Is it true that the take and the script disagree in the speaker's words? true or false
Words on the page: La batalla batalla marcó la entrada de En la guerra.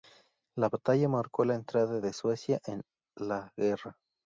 true